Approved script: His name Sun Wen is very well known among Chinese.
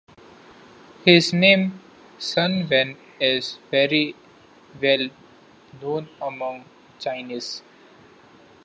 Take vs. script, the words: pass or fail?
pass